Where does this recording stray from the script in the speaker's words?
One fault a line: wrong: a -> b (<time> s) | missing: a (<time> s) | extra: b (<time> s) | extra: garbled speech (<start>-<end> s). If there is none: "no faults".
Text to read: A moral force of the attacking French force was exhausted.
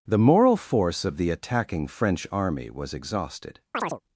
wrong: A -> The (0.1 s)
wrong: force -> army (2.3 s)